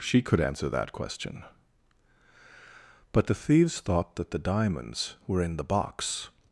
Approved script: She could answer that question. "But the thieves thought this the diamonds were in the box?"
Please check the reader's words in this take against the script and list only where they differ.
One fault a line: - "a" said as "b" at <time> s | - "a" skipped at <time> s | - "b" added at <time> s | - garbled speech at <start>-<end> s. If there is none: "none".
- "this" said as "that" at 4.2 s